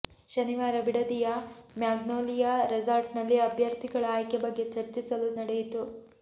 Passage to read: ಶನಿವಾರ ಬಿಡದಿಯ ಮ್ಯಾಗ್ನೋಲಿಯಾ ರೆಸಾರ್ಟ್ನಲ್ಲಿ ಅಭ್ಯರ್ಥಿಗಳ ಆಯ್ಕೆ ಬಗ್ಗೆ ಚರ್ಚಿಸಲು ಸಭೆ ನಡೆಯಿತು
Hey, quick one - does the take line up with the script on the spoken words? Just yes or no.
no